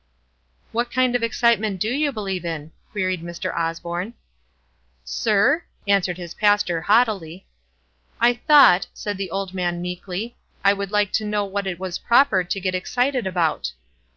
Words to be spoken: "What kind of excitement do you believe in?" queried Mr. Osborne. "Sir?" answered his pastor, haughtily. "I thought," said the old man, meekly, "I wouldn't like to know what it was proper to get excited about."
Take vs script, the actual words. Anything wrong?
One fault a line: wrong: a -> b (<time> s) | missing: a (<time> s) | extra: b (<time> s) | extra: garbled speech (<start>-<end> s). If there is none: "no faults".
wrong: wouldn't -> would (10.7 s)